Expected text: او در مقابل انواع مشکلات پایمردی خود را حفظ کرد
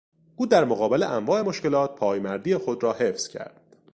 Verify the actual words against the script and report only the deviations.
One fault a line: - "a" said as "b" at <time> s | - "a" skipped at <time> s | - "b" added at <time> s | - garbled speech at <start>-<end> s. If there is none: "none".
none